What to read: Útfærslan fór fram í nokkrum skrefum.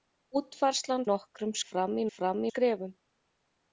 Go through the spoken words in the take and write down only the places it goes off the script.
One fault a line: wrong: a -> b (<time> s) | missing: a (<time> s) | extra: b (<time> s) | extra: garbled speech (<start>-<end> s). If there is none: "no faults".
wrong: fór -> nokkrum (1.1 s)
wrong: nokkrum -> fram (2.1 s)